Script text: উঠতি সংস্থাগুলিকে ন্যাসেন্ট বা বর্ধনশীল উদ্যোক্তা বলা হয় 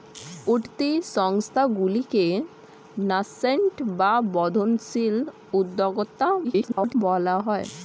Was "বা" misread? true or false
false